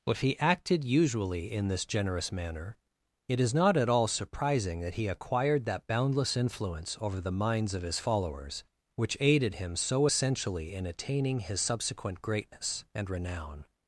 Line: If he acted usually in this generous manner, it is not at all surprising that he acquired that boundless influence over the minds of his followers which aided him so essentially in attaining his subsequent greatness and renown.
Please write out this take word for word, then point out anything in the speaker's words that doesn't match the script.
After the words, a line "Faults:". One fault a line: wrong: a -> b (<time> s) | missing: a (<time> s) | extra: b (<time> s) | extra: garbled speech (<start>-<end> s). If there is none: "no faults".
If he acted usually in this generous manner, it is not at all surprising that he acquired that boundless influence over the minds of his followers which aided him so essentially in attaining his subsequent greatness and renown.
Faults:
no faults